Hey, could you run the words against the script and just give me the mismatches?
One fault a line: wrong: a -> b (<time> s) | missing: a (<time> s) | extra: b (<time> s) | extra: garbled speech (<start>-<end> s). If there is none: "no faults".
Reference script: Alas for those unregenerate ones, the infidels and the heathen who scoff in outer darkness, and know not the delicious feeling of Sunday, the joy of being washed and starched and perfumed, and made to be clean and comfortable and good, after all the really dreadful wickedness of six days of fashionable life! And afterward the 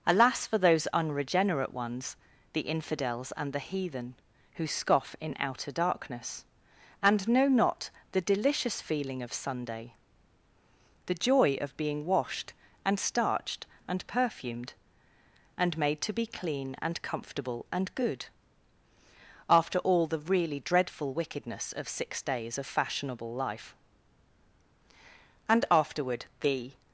no faults